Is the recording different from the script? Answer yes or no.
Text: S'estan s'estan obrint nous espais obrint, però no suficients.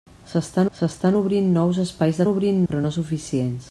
no